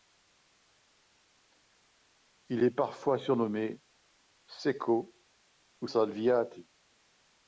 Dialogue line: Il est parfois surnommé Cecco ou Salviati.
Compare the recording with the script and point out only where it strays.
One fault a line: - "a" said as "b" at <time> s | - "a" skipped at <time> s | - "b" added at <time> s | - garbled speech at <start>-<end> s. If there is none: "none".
none